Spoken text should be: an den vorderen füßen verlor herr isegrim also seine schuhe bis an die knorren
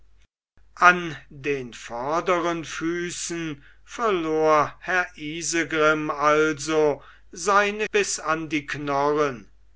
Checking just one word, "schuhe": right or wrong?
wrong